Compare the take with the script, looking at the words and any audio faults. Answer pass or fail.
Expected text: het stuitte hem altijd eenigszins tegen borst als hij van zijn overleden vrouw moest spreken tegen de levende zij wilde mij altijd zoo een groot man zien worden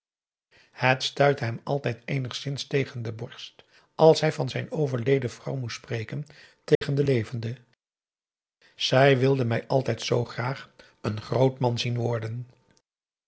fail